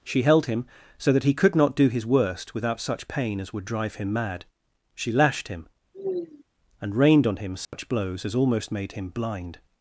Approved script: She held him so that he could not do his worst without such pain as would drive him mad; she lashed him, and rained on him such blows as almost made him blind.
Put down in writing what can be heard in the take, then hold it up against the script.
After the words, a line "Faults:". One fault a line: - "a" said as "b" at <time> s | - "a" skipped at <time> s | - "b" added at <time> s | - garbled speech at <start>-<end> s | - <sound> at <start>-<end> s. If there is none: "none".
She held him so that he could not do his worst without such pain as would drive him mad; she lashed him, and rained on him such blows as almost made him blind.
Faults:
- sigh at 5.9-6.4 s
- dropout at 7.6-7.7 s